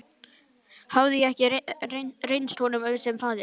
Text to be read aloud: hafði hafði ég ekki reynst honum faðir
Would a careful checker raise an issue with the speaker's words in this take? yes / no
yes